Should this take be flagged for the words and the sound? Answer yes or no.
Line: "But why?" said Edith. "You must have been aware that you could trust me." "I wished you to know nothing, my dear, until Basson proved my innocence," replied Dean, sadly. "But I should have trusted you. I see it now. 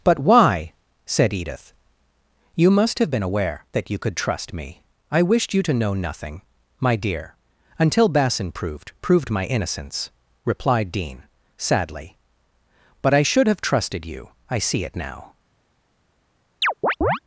yes